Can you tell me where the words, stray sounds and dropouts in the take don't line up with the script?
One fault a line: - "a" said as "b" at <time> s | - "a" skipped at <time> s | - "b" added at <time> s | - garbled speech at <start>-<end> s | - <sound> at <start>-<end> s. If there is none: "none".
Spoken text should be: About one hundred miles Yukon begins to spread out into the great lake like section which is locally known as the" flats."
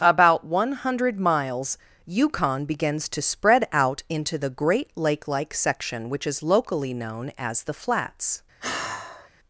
- sigh at 8.6-9.3 s